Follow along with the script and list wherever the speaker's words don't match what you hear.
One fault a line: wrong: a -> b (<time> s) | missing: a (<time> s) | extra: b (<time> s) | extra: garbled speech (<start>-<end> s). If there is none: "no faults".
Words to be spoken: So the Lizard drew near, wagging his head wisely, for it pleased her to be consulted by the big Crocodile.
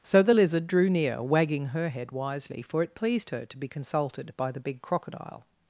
wrong: his -> her (1.7 s)